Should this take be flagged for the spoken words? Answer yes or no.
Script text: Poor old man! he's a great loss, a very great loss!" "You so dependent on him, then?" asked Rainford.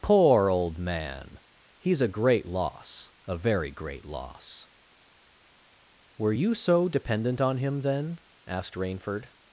yes